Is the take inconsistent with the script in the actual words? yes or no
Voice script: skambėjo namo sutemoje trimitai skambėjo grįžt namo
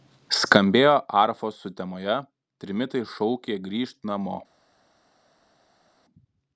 yes